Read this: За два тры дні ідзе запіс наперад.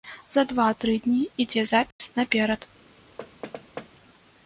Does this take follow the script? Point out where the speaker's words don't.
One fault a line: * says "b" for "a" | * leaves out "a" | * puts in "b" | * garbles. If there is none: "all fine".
all fine